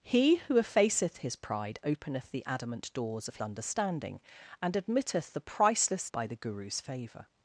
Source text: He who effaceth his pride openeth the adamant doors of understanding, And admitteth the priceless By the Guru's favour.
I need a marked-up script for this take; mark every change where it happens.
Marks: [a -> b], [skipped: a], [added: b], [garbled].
He who effaceth his pride openeth the adamant doors of understanding, And admitteth the priceless By the Guru's favour.